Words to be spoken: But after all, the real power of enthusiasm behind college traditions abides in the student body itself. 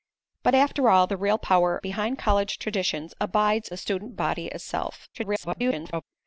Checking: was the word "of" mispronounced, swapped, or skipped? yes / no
yes